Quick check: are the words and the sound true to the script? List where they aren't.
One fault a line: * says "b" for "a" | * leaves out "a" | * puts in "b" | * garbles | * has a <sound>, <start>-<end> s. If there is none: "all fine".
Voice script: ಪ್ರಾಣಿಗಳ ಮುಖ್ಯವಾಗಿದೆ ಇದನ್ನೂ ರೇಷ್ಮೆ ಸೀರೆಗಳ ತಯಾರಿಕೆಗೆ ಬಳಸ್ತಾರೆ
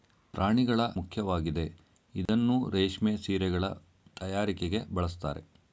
* has a dropout, 2.3-2.3 s